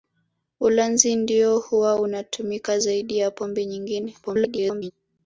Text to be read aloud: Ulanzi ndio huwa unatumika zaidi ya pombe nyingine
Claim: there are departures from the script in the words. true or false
true